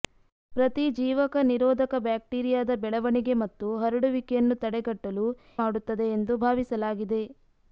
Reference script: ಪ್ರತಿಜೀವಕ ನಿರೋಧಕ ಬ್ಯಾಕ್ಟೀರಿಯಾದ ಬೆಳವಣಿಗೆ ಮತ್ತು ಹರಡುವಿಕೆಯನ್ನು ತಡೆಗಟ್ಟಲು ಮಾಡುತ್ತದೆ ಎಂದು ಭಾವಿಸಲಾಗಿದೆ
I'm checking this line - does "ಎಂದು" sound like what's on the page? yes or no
yes